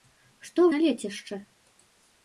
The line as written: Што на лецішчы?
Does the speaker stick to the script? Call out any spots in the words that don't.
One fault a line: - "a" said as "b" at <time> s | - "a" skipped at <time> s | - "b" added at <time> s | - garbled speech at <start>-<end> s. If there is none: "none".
none